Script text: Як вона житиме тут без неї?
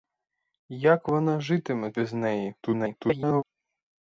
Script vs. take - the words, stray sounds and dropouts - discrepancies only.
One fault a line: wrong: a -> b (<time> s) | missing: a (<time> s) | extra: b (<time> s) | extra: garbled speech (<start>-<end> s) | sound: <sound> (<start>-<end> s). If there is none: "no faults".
missing: тут (1.9 s)
extra: garbled speech (2.6-3.4 s)